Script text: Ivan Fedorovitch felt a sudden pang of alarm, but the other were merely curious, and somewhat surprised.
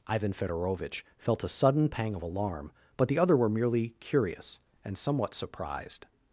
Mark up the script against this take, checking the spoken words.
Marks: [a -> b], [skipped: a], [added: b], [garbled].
Ivan Fedorovitch felt a sudden pang of alarm, but the other were merely curious, and somewhat surprised.